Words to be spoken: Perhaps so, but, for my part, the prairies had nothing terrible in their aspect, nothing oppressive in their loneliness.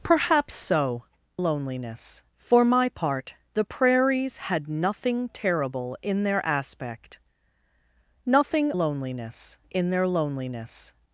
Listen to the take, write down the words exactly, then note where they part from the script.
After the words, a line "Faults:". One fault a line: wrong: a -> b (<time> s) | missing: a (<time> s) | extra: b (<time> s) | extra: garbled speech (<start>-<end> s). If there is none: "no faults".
Perhaps so, loneliness, for my part, the prairies had nothing terrible in their aspect, nothing loneliness in their loneliness.
Faults:
wrong: but -> loneliness (1.4 s)
wrong: oppressive -> loneliness (8.7 s)